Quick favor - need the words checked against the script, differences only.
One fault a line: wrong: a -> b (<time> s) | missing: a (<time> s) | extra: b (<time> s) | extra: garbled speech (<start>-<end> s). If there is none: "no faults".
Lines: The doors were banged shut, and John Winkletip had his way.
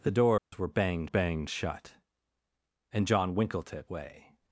extra: banged (1.0 s)
missing: had his (3.9 s)